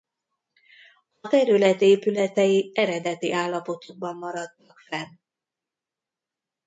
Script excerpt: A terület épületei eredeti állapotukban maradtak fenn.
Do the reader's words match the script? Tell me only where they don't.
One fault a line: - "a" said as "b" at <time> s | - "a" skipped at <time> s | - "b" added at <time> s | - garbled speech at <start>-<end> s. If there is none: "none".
none